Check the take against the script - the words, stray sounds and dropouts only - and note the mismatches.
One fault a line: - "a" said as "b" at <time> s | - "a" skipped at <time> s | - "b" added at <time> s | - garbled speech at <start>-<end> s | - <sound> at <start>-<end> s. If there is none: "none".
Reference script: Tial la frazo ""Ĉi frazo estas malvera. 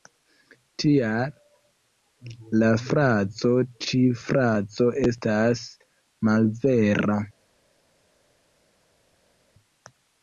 none